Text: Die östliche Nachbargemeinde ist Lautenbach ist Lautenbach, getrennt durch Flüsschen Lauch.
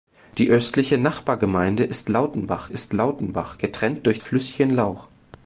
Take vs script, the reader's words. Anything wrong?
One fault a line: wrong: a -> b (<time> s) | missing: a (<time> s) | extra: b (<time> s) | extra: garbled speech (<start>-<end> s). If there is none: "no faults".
no faults